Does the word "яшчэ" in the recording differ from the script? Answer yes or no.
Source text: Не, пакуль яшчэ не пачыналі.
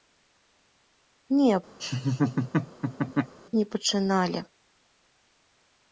yes